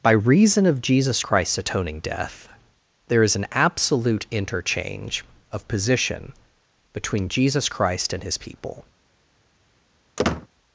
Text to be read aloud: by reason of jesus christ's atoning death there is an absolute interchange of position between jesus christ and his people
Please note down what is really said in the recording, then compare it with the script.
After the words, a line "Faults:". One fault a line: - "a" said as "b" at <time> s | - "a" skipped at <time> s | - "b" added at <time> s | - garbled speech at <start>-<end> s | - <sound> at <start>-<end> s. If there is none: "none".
by reason of jesus christ's atoning death there is an absolute interchange of position between jesus christ and his people
Faults:
- squeak at 10.2-10.5 s